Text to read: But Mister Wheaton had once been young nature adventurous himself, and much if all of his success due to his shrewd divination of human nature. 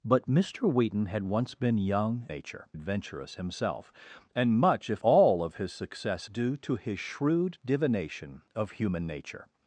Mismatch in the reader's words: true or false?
false